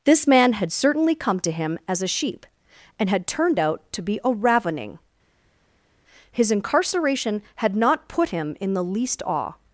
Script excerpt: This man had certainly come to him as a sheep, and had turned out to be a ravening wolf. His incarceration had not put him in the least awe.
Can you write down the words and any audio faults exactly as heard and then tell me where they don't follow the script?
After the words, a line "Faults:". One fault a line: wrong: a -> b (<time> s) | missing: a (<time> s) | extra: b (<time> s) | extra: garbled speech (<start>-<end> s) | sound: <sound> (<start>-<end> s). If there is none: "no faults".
This man had certainly come to him as a sheep, and had turned out to be a ravening. His incarceration had not put him in the least awe.
Faults:
missing: wolf (5.0 s)